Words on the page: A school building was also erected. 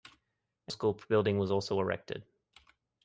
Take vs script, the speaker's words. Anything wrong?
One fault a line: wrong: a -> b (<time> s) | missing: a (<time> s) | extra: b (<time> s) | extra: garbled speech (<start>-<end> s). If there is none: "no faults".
no faults